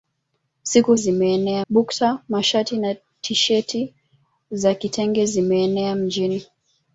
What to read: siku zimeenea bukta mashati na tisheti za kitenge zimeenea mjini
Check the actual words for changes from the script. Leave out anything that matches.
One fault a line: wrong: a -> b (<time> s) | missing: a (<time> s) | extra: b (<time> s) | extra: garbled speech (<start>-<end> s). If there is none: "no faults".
no faults